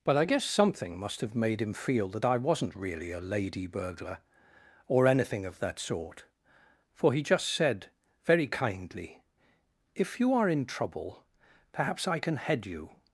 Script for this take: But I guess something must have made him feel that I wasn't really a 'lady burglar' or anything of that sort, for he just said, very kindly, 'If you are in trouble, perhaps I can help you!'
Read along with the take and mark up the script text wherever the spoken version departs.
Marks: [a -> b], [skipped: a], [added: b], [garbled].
But I guess something must have made him feel that I wasn't really a 'lady burglar' or anything of that sort, for he just said, very kindly, 'If you are in trouble, perhaps I can [help -> head] you!'